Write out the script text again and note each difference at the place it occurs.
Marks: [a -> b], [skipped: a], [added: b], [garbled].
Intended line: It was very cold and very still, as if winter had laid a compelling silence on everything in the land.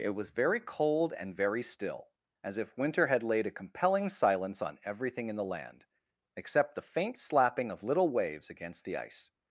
It was very cold and very still, as if winter had laid a compelling silence on everything in the land. [added: Except the faint slapping of little waves against the ice]